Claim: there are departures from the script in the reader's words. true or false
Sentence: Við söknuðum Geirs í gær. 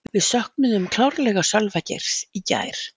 true